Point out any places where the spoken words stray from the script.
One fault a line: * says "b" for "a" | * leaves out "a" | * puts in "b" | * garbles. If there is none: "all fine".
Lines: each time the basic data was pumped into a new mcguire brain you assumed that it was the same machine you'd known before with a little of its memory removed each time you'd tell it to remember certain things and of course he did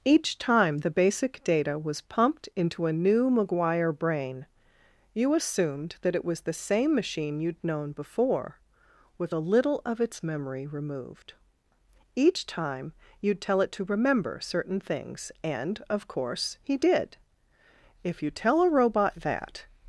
* puts in "if you tell a robot that"